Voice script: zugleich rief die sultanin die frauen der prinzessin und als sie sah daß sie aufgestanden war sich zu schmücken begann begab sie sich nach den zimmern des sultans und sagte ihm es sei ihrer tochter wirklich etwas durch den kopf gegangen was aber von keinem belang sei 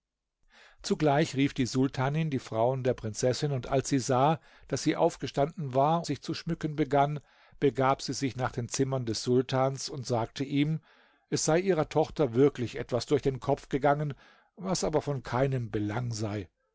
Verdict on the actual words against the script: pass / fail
pass